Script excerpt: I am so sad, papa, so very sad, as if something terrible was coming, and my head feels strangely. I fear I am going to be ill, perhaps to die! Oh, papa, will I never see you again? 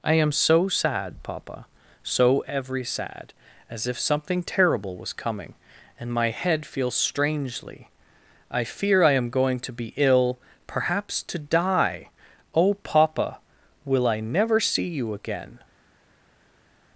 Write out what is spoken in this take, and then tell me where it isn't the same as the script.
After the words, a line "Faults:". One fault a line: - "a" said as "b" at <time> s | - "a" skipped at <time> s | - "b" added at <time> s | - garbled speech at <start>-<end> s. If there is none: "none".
I am so sad, papa, so every sad, as if something terrible was coming, and my head feels strangely. I fear I am going to be ill, perhaps to die! Oh, papa, will I never see you again?
Faults:
- "very" said as "every" at 2.5 s